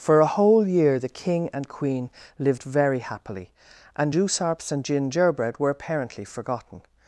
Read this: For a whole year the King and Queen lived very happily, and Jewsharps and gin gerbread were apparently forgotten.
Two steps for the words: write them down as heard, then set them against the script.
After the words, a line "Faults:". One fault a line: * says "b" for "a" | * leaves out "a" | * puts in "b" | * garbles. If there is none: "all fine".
For a whole year the King and Queen lived very happily, and Jewsharps and gin gerbread were apparently forgotten.
Faults:
all fine